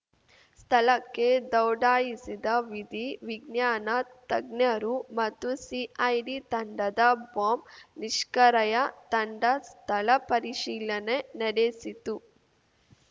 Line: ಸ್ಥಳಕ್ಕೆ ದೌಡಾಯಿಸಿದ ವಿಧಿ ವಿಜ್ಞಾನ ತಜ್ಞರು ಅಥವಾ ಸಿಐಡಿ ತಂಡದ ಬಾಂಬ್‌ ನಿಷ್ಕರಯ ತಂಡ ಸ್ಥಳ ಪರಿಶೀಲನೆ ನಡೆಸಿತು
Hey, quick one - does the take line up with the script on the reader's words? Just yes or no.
no